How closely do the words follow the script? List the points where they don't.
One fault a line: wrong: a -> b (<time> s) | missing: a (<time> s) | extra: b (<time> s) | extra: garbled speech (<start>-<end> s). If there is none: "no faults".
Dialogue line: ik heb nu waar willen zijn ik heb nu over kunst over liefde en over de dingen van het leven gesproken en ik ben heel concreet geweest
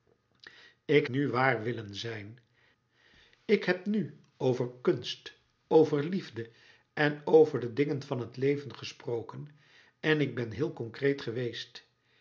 missing: heb (1.1 s)